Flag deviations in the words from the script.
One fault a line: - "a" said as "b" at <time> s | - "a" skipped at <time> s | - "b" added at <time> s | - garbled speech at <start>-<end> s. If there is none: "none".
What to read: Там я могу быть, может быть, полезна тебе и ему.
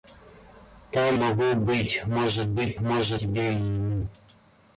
- "я" skipped at 1.1 s
- "полезна" said as "может" at 2.8 s